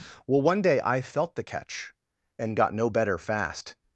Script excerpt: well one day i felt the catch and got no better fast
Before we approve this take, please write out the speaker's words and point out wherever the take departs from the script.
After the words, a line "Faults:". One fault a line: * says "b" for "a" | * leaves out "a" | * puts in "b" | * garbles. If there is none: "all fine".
well one day i felt the catch and got no better fast
Faults:
all fine